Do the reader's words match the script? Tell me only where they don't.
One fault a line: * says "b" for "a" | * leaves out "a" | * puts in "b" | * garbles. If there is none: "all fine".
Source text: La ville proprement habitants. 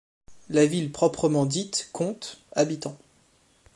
* puts in "dite compte"